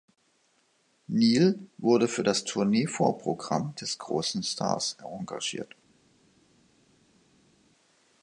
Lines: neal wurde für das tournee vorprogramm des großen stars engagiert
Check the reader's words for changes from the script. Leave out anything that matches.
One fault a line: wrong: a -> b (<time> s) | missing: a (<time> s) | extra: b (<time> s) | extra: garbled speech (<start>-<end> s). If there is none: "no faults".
no faults